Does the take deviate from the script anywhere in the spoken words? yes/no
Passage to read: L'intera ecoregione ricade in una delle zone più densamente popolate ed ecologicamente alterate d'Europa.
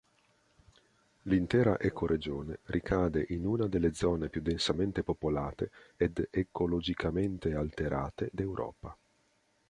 no